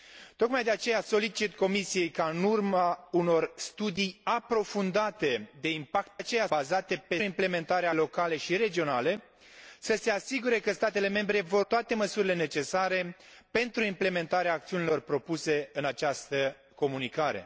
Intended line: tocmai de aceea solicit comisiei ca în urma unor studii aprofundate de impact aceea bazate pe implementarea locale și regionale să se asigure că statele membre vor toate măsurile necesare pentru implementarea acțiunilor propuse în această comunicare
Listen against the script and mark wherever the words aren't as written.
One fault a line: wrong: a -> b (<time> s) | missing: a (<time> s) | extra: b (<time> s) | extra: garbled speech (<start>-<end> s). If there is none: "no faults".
no faults